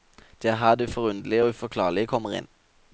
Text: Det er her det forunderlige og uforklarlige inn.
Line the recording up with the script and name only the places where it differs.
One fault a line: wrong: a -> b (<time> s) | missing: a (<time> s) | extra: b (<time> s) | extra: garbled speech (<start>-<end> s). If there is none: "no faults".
extra: kommer (2.1 s)